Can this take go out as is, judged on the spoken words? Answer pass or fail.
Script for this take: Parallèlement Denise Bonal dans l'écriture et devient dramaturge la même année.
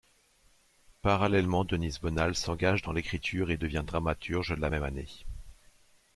fail